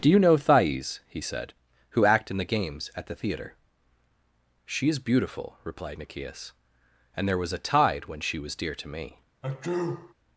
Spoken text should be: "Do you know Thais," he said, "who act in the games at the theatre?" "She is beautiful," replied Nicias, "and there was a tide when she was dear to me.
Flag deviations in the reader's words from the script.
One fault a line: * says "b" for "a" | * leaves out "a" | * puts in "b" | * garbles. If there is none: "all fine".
all fine